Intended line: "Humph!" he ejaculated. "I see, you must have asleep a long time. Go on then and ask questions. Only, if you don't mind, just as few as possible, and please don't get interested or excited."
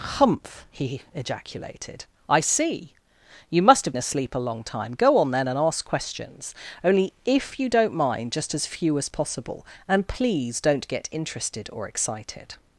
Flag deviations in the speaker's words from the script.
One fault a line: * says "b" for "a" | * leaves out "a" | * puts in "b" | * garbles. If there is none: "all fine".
all fine